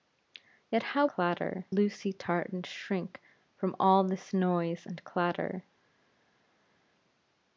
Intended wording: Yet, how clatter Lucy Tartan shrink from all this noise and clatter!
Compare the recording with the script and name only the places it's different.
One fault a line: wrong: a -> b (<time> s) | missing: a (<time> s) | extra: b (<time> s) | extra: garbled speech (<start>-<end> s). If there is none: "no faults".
no faults